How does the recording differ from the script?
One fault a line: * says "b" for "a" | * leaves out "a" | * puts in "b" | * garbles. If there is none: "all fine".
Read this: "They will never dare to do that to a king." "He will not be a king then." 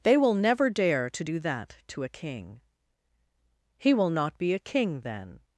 all fine